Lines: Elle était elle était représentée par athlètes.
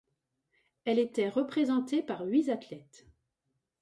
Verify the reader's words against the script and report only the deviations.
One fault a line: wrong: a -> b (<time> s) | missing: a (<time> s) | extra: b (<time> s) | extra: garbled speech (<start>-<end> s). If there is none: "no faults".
missing: elle était (1.3 s)
extra: huit (2.2 s)